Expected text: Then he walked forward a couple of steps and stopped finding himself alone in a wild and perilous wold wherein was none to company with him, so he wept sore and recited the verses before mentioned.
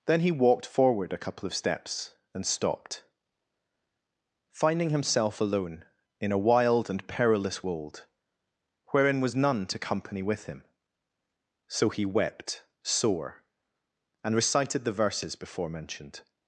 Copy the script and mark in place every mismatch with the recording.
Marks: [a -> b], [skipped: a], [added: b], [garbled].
Then he walked forward a couple of steps and stopped finding himself alone in a wild and perilous wold wherein was none to company with him, so he wept sore and recited the verses before mentioned.